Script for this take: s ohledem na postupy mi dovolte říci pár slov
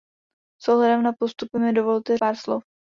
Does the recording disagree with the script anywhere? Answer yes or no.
yes